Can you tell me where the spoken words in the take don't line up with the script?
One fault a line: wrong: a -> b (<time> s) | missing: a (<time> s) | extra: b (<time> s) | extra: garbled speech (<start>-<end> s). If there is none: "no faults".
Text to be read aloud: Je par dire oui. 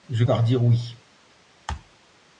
no faults